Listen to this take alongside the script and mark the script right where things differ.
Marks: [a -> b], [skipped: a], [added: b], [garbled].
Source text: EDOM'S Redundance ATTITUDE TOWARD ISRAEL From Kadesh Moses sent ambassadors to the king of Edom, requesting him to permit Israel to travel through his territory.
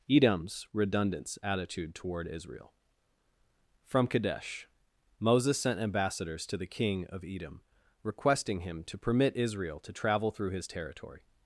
EDOM'S Redundance ATTITUDE TOWARD ISRAEL From Kadesh Moses sent ambassadors to the king of Edom, requesting him to permit Israel to travel through his territory.